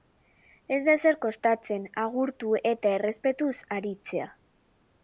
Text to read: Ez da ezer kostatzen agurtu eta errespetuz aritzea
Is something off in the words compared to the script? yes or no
no